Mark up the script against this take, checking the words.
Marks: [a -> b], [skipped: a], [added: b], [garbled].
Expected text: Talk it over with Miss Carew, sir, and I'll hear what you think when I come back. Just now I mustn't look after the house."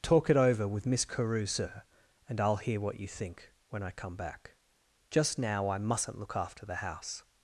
Talk it over with Miss Carew, sir, and I'll hear what you think when I come back. Just now I mustn't look after the house."